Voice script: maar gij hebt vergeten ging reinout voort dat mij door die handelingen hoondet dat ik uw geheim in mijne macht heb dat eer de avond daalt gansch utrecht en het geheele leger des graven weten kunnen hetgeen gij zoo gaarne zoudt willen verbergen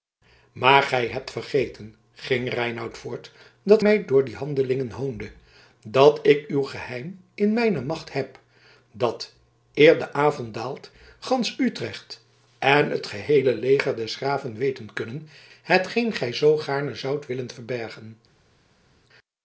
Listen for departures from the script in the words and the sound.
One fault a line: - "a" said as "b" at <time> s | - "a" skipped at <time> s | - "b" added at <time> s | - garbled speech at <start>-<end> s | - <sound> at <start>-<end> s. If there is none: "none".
none